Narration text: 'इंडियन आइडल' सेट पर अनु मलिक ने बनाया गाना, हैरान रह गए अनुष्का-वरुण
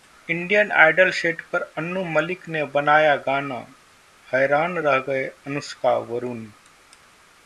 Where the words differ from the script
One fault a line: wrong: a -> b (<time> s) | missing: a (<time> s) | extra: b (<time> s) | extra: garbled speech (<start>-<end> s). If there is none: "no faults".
no faults